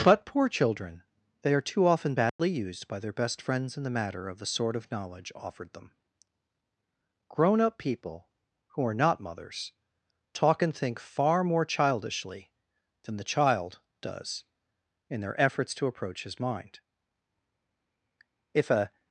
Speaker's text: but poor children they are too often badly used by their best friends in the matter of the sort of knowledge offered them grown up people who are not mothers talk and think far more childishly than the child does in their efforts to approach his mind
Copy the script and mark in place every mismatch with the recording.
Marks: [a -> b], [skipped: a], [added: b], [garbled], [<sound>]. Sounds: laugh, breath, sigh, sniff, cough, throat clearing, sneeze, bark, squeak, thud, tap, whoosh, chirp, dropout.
but poor children they are too often badly [dropout] used by their best friends in the matter of the sort of knowledge offered them grown up people who are not mothers talk and think far more childishly than the child does in their efforts to approach his mind [added: if a]